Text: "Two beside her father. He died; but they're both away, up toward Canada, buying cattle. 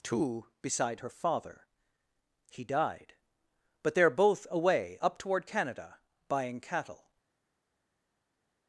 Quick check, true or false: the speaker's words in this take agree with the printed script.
true